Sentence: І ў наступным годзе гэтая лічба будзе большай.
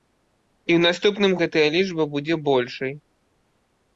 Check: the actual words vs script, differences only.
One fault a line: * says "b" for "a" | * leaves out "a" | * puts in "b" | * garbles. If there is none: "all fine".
* leaves out "годзе"